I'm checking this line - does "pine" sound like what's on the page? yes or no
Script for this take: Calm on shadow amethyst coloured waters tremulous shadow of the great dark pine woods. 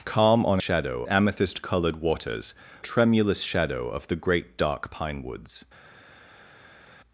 yes